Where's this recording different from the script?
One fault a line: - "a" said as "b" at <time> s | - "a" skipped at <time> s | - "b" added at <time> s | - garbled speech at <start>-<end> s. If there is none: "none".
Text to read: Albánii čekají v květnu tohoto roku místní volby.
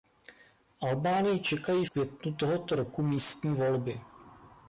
- "v" skipped at 1.9 s